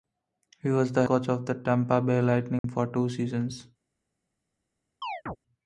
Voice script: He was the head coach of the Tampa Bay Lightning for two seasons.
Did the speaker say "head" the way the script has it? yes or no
no